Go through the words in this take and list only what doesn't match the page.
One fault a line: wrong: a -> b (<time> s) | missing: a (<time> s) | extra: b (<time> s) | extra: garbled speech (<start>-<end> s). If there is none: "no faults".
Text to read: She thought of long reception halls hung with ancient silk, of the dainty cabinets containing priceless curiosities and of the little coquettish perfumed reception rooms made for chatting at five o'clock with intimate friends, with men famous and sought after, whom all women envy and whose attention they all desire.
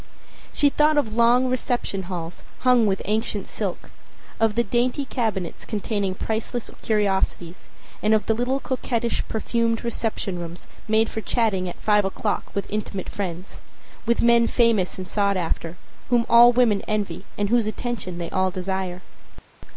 no faults